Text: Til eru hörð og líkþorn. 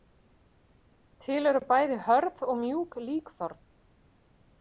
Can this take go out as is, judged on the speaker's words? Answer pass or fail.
fail